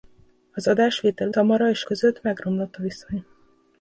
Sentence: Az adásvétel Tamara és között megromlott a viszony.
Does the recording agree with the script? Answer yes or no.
yes